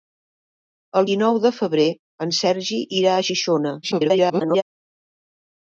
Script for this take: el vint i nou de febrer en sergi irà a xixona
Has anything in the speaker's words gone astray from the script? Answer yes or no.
yes